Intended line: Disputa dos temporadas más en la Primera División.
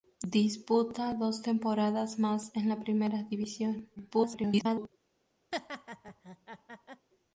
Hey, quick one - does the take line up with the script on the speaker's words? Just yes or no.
no